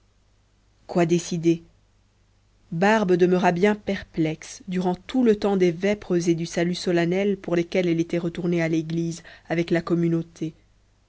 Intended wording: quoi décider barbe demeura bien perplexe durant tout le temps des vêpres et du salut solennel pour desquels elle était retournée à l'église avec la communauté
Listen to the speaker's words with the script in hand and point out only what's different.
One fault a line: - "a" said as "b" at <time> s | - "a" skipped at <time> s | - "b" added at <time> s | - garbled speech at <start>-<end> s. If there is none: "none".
none